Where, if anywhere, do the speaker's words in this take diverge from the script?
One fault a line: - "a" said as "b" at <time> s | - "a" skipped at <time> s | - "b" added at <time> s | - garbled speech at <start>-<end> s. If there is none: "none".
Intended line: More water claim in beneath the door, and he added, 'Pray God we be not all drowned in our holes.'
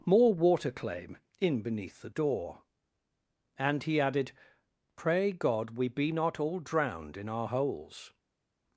none